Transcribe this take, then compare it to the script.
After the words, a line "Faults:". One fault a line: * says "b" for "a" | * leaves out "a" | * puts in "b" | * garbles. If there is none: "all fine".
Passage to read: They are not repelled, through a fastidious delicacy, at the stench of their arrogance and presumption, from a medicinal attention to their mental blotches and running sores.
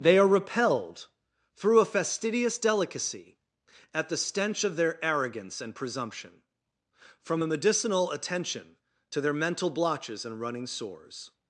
They are repelled, through a fastidious delicacy, at the stench of their arrogance and presumption, from a medicinal attention to their mental blotches and running sores.
Faults:
* leaves out "not"